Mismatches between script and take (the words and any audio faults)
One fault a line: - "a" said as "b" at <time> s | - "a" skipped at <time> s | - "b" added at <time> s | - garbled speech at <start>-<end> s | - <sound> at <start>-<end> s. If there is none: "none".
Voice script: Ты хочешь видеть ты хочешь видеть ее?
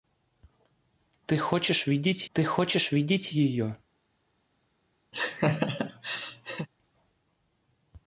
- laugh at 5.1-6.7 s